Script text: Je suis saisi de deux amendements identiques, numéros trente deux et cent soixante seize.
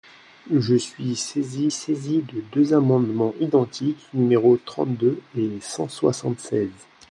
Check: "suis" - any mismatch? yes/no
no